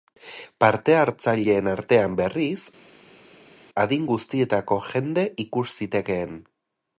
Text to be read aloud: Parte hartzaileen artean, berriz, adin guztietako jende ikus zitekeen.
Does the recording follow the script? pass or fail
pass